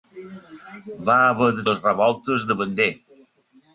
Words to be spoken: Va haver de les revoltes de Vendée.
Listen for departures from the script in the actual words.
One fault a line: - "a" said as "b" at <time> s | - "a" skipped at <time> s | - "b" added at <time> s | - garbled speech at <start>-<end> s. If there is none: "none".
none